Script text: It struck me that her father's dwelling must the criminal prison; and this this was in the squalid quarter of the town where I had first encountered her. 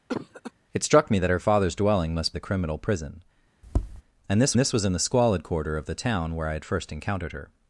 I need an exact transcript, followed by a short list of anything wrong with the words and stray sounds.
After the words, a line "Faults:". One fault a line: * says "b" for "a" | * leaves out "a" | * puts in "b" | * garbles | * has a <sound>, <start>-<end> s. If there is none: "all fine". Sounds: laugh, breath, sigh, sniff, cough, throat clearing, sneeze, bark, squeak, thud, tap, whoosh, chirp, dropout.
It struck me that her father's dwelling must the criminal prison; and this this was in the squalid quarter of the town where I had first encountered her.
Faults:
* has a cough, 0.1-0.5 s
* has a tap, 3.6-4.0 s